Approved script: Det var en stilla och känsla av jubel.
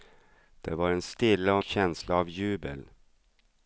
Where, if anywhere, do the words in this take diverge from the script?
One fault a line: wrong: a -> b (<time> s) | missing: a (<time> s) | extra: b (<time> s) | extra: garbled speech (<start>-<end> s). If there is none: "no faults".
no faults